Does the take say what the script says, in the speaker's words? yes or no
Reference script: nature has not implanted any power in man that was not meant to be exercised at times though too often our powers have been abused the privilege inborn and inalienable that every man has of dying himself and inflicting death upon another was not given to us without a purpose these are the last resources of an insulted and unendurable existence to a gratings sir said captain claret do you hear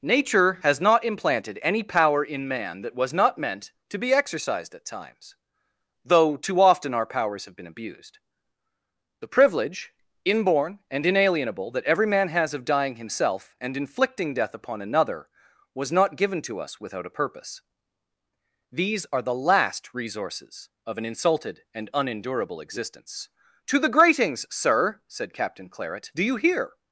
no